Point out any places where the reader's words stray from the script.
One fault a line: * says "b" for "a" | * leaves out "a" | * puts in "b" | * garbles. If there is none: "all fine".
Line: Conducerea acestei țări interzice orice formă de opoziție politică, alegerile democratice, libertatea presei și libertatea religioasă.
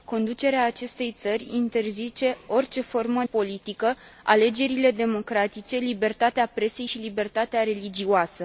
* leaves out "de opoziție"